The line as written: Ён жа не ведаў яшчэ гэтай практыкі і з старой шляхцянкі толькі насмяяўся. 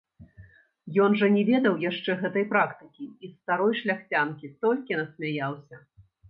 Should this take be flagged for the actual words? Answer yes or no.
no